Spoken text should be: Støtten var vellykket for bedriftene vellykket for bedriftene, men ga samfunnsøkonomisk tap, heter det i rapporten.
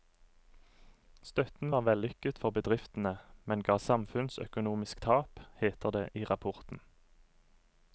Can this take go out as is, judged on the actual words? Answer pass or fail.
fail